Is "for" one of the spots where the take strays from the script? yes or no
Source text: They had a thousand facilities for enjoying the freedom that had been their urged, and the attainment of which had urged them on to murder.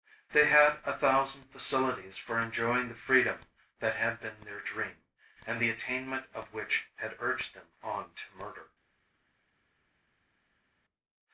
no